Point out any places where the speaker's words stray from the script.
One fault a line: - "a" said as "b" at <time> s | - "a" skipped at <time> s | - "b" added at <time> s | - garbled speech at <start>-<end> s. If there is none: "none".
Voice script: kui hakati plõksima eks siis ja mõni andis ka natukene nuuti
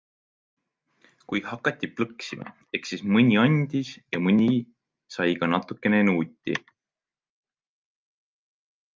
- "mõni andis" added at 3.2 s
- "andis" said as "sai" at 5.1 s